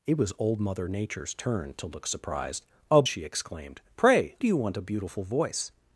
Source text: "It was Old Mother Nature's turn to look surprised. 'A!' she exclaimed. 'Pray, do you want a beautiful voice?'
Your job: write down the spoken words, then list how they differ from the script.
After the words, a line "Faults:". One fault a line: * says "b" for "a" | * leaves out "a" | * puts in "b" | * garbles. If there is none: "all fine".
"It was Old Mother Nature's turn to look surprised. 'A!' she exclaimed. 'Pray, do you want a beautiful voice?'
Faults:
all fine